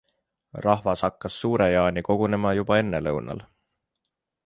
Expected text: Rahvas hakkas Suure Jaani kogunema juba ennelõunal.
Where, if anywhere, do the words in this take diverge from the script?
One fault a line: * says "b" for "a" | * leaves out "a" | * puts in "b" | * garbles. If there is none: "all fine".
all fine